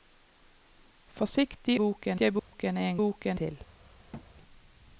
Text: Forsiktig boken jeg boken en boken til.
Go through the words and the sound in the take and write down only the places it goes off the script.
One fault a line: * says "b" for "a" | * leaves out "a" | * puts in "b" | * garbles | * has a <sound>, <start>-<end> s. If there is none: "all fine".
* has a dropout, 2.4-2.5 s
* has a thud, 4.1-4.3 s